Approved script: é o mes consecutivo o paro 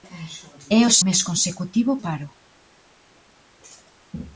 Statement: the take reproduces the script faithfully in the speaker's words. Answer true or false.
true